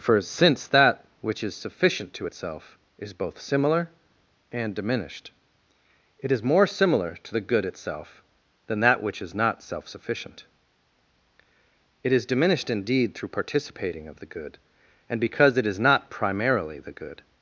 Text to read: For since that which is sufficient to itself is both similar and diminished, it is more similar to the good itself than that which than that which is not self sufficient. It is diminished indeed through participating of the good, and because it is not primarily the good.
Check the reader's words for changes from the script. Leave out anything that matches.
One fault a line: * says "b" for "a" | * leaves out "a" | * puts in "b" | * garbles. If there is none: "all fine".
* leaves out "than that which"